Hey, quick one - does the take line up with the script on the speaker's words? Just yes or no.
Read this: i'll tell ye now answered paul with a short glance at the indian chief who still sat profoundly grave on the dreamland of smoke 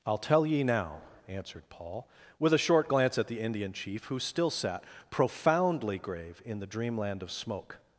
no